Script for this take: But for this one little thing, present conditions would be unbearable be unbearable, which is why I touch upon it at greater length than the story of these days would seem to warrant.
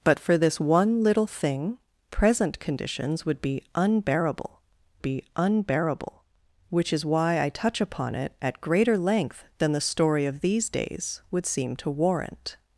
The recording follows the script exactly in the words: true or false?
true